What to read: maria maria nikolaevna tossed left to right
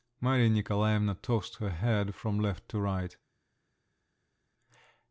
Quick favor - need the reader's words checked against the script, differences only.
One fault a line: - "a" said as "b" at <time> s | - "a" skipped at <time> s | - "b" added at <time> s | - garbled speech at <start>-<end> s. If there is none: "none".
- "maria" skipped at 0.5 s
- "her head from" added at 1.6 s